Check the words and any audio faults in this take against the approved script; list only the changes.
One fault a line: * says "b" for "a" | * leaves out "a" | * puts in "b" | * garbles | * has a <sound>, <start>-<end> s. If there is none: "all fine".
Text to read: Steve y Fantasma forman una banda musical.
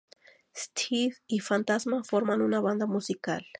all fine